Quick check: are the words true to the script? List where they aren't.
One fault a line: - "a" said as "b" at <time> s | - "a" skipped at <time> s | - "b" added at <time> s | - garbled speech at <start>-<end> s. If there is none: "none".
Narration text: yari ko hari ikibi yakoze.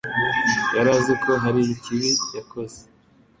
- "azi" added at 1.0 s